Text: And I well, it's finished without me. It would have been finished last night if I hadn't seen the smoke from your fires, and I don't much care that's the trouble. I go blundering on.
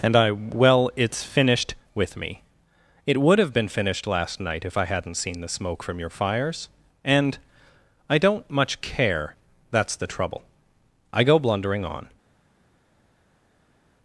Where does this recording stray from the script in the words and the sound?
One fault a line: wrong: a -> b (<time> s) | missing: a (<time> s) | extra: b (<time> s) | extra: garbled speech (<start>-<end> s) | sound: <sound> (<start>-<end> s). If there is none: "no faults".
wrong: without -> with (1.9 s)